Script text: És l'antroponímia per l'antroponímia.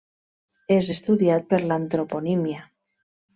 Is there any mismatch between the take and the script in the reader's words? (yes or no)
yes